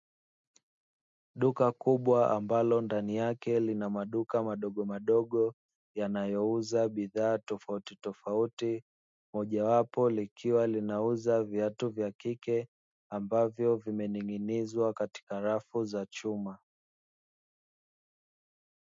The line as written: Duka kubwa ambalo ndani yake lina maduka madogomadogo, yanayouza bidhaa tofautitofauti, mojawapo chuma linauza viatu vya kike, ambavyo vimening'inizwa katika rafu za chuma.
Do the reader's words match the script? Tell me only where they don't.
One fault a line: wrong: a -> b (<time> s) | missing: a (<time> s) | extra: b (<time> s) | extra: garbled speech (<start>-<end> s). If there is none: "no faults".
wrong: chuma -> likiwa (10.1 s)